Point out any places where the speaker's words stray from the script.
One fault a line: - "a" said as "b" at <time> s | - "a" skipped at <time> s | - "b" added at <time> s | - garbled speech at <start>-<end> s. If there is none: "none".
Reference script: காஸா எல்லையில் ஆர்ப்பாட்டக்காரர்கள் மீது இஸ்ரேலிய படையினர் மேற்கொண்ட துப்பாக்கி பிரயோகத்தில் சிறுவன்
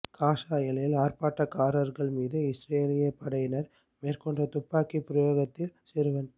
none